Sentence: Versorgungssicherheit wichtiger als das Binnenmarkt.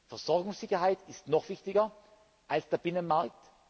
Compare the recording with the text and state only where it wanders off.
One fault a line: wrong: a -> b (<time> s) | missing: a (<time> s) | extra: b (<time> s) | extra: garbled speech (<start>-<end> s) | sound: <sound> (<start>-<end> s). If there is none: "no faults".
extra: ist noch (1.1 s)
wrong: das -> der (2.7 s)